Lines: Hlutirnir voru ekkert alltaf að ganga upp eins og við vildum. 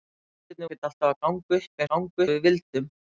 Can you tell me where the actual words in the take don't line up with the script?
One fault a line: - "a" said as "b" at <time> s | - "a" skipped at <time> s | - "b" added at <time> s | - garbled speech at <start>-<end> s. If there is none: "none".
- "voru" skipped at 0.7 s
- "eins" said as "ganga" at 1.9 s